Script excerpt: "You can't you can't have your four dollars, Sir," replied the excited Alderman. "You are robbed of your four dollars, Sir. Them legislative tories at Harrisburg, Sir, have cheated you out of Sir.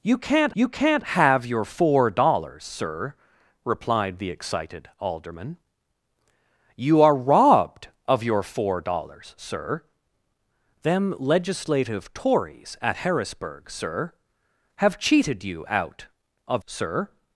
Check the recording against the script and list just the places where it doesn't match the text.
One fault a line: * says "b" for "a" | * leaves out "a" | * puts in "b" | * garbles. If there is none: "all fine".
all fine